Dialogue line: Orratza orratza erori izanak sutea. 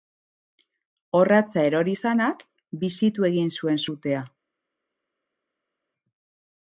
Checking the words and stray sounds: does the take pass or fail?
fail